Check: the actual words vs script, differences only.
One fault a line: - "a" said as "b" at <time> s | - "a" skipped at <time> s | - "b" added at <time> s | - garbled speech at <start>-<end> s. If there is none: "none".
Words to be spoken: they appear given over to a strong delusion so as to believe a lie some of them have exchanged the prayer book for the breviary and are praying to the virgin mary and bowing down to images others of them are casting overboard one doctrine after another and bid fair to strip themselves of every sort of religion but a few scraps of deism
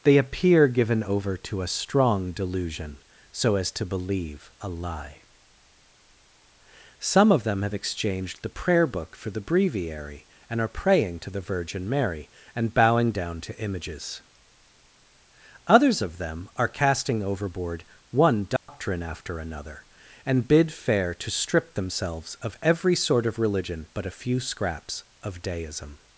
none